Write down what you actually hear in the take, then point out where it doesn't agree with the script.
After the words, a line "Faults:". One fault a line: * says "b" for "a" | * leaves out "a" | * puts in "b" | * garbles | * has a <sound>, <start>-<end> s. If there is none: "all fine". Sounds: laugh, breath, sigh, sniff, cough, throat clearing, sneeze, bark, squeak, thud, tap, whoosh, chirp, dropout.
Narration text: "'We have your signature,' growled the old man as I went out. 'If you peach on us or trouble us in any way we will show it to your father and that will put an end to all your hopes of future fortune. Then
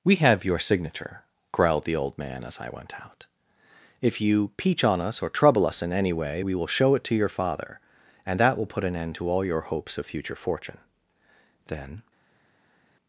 "'We have your signature,' growled the old man as I went out. 'If you peach on us or trouble us in any way we will show it to your father and that will put an end to all your hopes of future fortune. Then
Faults:
all fine